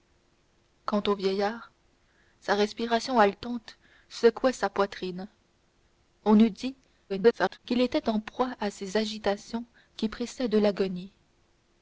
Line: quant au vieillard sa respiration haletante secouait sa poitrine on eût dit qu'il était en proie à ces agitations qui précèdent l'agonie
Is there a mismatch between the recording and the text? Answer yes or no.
yes